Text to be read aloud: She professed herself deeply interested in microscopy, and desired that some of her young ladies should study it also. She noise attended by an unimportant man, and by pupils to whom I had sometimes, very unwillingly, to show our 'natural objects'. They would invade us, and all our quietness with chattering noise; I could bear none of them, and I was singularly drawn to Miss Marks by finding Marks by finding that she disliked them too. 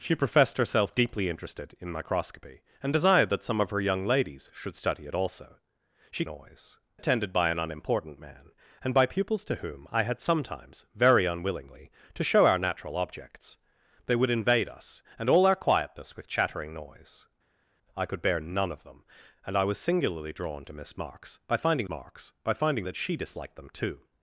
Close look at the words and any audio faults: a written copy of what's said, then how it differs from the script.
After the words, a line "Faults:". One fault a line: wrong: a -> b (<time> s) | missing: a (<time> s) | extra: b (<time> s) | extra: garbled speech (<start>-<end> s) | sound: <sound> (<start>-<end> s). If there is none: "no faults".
She professed herself deeply interested in microscopy, and desired that some of her young ladies should study it also. She noise attended by an unimportant man, and by pupils to whom I had sometimes, very unwillingly, to show our 'natural objects'. They would invade us, and all our quietness with chattering noise; I could bear none of them, and I was singularly drawn to Miss Marks by finding Marks by finding that she disliked them too.
Faults:
no faults